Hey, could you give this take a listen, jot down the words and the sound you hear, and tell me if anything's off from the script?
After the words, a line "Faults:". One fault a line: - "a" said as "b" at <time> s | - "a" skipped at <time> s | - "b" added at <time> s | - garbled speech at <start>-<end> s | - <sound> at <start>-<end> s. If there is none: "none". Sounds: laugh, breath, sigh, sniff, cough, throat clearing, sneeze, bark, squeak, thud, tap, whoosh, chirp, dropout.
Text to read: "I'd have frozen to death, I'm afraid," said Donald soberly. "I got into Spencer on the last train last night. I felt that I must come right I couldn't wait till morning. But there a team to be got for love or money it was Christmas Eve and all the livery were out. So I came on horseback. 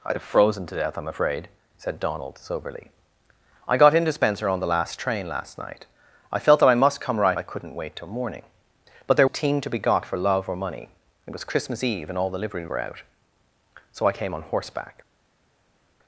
"I'd have frozen to death, I'm afraid," said Donald soberly. "I got into Spencer on the last train last night. I felt that I must come right I couldn't wait till morning. But there a team to be got for love or money it was Christmas Eve and all the livery were out. So I came on horseback.
Faults:
none